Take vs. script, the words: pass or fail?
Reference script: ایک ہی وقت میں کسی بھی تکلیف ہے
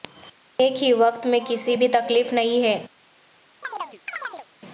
fail